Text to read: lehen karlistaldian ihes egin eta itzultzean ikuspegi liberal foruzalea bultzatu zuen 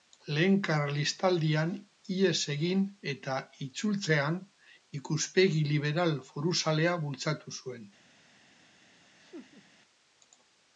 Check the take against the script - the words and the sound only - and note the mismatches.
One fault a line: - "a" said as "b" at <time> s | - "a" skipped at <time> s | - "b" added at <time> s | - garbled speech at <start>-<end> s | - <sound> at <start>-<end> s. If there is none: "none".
- laugh at 9.2-9.7 s